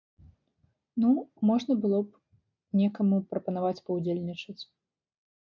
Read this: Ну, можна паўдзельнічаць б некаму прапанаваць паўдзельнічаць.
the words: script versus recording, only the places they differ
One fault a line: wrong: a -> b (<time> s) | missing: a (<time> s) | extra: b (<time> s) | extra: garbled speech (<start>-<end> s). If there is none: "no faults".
wrong: паўдзельнічаць -> было (1.8 s)